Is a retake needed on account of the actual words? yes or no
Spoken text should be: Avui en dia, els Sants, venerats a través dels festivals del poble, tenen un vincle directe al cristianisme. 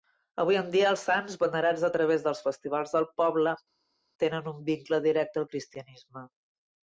no